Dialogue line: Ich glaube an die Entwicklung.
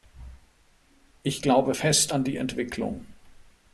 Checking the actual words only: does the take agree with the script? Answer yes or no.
no